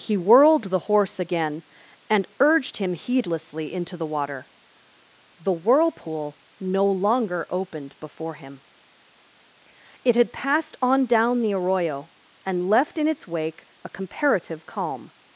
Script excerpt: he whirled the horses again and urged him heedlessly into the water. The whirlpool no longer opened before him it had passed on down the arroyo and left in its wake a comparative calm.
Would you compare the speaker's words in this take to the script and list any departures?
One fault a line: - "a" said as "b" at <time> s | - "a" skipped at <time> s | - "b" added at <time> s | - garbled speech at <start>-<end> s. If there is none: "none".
- "horses" said as "horse" at 0.8 s